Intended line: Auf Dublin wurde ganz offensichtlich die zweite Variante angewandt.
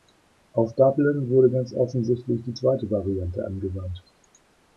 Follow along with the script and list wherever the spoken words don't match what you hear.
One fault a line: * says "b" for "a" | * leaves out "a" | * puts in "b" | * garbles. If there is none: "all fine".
all fine